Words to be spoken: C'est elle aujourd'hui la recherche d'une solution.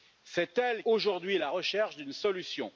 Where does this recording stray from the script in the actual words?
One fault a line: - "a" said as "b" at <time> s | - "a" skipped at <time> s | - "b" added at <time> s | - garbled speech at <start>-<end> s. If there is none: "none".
none